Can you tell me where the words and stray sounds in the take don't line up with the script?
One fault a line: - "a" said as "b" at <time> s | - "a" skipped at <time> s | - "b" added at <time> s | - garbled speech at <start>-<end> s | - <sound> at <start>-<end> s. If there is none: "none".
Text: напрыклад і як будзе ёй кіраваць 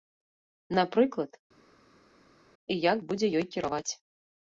none